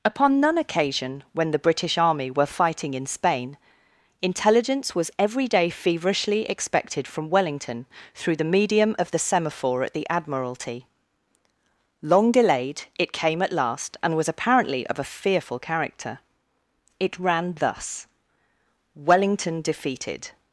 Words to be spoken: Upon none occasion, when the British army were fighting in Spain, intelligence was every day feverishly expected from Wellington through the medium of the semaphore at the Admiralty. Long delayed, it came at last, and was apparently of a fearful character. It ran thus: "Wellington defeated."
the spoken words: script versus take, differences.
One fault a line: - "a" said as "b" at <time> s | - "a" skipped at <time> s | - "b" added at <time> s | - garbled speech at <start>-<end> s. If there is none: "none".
none